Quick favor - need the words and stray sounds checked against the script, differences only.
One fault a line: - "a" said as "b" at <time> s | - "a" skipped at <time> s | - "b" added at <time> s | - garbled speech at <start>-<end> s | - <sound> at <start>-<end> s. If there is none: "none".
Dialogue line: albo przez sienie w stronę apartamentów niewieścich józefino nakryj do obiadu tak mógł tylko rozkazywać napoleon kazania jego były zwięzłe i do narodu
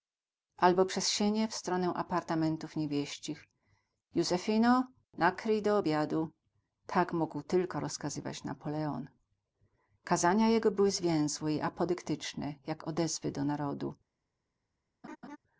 - "apodyktyczne jak odezwy" added at 11.6 s
- laugh at 15.0-15.4 s